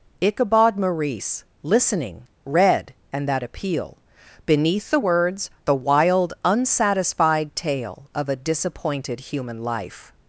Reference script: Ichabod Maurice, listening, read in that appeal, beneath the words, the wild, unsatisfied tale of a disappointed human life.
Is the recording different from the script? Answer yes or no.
yes